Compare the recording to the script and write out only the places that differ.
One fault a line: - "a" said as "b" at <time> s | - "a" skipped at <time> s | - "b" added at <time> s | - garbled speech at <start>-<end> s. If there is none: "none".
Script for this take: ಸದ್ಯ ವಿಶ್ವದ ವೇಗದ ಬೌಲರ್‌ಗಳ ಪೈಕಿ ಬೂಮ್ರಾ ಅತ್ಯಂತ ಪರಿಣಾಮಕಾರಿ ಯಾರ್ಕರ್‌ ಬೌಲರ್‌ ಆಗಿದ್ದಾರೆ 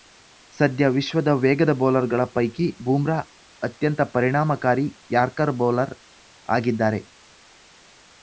none